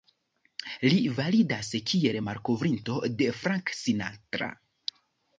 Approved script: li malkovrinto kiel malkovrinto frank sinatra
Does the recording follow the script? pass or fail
fail